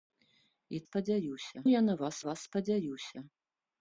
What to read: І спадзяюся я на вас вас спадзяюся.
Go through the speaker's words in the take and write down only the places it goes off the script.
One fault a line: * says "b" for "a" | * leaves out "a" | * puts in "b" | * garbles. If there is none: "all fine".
all fine